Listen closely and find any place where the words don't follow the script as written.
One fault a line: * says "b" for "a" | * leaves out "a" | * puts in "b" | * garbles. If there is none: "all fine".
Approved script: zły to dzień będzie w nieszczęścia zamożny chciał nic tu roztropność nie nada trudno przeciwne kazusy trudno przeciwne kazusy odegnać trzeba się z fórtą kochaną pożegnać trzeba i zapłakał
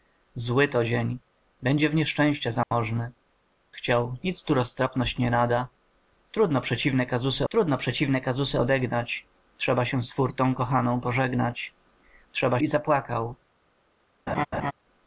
all fine